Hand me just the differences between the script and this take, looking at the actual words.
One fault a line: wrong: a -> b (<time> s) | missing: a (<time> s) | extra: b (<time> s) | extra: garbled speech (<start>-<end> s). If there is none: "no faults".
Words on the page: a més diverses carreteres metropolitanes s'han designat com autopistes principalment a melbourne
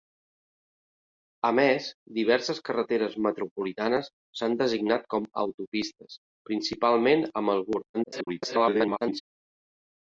extra: garbled speech (7.9-9.2 s)